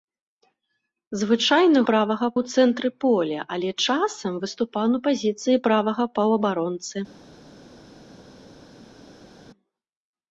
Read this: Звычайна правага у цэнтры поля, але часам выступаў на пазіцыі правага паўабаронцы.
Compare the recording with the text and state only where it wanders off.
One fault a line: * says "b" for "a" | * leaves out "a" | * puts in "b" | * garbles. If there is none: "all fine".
all fine